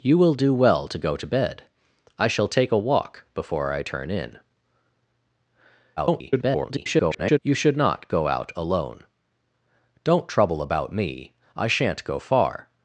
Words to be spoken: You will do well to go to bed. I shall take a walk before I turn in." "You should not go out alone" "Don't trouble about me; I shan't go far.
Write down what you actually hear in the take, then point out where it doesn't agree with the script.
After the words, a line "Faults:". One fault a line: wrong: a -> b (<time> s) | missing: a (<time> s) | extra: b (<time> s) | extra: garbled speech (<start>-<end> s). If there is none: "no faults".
You will do well to go to bed. I shall take a walk before I turn in." [garbled] "You should not go out alone" "Don't trouble about me; I shan't go far.
Faults:
extra: garbled speech (6.0-7.4 s)